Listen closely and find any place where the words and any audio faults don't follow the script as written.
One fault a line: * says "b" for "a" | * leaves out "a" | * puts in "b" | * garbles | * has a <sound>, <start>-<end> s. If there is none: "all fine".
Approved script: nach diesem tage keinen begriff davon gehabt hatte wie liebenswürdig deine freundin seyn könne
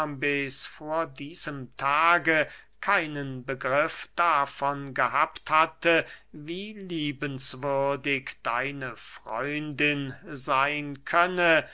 * says "vor" for "nach"